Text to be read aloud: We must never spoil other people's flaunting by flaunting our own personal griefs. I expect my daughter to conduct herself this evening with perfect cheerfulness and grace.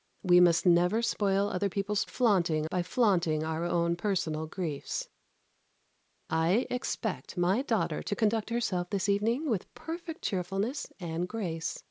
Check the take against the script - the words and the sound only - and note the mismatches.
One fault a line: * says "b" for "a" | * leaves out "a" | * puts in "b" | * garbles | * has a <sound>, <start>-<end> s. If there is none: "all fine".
all fine